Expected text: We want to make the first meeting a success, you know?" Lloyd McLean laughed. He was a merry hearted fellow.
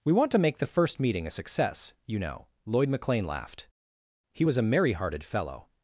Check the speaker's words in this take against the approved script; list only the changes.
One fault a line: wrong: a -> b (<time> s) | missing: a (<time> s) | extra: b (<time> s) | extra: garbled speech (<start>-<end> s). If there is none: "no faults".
no faults